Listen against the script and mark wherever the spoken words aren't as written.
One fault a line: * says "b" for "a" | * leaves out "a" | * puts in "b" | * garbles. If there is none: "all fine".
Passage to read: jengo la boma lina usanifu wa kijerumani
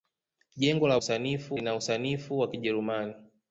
* says "usanifu" for "boma"